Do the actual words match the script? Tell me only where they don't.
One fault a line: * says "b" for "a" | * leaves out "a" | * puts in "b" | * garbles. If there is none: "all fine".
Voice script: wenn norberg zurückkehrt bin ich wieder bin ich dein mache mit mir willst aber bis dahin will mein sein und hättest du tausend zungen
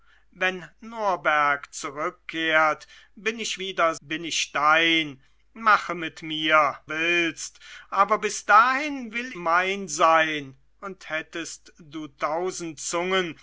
all fine